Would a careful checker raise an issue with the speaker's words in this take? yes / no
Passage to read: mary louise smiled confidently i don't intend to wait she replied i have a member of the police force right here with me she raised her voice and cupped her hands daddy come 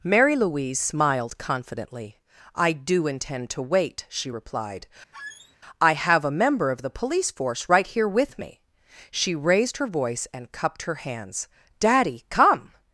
yes